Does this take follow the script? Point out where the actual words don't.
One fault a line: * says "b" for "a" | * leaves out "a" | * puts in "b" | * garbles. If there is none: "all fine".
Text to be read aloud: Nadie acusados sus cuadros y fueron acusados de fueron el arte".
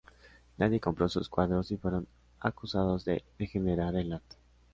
* says "compró" for "acusados"
* says "degenerar" for "fueron"